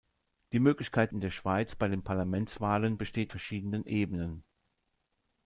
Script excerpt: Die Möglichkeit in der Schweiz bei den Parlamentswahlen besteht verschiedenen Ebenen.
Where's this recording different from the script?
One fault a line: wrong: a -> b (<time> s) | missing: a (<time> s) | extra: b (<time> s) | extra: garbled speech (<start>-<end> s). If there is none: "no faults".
no faults